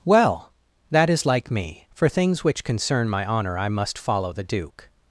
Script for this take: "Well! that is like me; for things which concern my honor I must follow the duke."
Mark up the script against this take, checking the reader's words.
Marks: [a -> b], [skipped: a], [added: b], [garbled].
"Well! that is like me; for things which concern my honor I must follow the duke."